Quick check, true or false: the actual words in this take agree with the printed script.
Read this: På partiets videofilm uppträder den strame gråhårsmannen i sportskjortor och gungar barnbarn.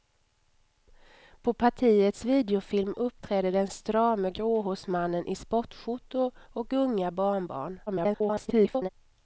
false